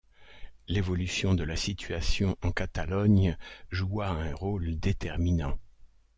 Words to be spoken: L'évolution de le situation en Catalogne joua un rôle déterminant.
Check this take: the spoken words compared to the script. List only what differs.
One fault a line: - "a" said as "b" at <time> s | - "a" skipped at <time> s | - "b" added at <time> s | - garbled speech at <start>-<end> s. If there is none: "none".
- "le" said as "la" at 1.4 s